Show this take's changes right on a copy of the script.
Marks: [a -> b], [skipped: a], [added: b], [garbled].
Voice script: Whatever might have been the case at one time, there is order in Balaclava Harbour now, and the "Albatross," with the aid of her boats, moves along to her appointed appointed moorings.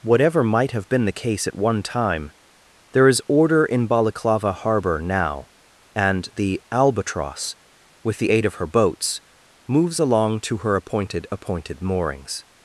Whatever might have been the case at one time, there is order in Balaclava Harbour now, and the "Albatross," with the aid of her boats, moves along to her appointed appointed moorings.